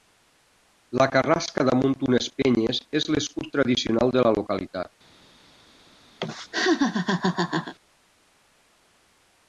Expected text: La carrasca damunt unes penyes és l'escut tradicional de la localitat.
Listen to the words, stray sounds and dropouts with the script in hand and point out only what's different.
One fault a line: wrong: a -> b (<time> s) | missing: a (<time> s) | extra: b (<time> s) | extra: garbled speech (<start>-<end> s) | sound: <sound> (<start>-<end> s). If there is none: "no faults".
sound: laugh (6.2-7.7 s)